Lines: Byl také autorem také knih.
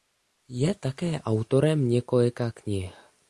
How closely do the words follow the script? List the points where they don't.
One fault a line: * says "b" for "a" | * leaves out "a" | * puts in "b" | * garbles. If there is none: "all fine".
* says "Je" for "Byl"
* says "několika" for "také"